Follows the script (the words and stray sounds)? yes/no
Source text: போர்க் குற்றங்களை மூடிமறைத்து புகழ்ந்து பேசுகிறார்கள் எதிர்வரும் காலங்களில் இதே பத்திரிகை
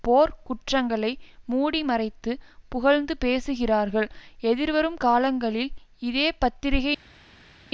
yes